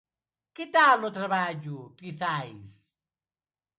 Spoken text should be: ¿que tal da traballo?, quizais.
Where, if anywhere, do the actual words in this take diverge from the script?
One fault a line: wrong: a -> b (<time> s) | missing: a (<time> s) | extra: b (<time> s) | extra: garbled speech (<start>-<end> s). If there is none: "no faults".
wrong: da -> no (1.0 s)